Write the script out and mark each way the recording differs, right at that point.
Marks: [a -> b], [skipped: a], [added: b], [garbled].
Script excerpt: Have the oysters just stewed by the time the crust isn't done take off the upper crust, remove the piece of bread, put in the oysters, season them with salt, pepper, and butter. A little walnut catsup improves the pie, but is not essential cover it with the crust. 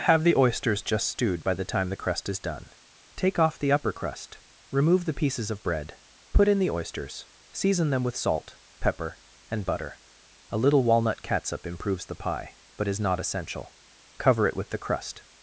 Have the oysters just stewed by the time the crust [isn't -> is] done take off the upper crust, remove the [piece -> pieces] of bread, put in the oysters, season them with salt, pepper, and butter. A little walnut catsup improves the pie, but is not essential cover it with the crust.